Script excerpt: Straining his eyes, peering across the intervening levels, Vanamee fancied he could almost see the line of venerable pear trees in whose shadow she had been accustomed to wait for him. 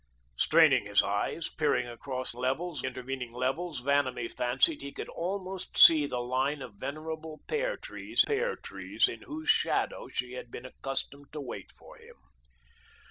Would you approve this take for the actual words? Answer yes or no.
no